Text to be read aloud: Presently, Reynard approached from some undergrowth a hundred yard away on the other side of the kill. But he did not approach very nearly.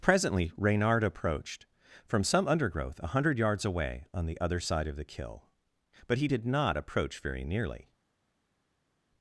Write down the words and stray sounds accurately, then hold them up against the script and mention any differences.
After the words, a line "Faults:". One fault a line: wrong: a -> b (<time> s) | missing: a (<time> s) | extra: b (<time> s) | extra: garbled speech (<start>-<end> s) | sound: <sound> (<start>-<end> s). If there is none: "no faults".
Presently, Reynard approached from some undergrowth a hundred yards away on the other side of the kill. But he did not approach very nearly.
Faults:
wrong: yard -> yards (3.4 s)